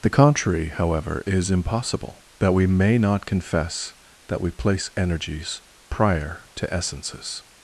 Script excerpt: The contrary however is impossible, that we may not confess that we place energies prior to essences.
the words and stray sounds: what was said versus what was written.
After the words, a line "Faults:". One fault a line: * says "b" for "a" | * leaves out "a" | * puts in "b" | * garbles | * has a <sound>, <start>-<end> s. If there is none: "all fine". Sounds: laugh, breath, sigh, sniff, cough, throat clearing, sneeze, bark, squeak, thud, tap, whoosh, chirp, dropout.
The contrary however is impossible, that we may not confess that we place energies prior to essences.
Faults:
all fine